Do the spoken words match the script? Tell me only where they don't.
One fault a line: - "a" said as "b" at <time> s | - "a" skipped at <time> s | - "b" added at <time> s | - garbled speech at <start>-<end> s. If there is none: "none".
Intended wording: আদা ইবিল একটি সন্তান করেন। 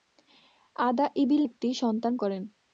none